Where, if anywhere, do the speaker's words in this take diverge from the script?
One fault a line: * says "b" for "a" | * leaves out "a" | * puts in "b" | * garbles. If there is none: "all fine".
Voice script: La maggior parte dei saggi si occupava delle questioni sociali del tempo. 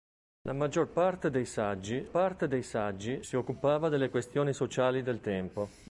* puts in "parte dei saggi"